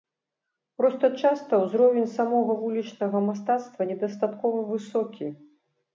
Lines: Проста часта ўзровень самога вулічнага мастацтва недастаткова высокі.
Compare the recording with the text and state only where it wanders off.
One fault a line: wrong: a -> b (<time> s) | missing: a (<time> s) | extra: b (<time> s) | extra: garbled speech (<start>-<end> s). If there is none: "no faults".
no faults